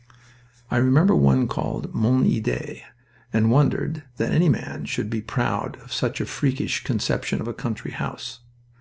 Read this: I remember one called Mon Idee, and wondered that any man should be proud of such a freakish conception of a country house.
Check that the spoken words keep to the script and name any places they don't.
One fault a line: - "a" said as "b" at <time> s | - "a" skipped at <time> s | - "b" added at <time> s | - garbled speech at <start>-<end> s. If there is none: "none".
none